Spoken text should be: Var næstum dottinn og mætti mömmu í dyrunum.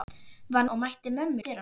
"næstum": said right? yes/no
no